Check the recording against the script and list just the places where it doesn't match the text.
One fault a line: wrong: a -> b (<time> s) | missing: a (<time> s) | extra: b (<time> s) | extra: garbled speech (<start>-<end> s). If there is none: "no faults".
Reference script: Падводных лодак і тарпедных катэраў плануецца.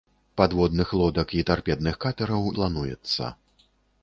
no faults